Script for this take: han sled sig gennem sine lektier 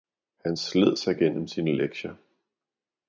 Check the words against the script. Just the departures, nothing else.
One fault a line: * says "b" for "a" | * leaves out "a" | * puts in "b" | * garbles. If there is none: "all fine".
all fine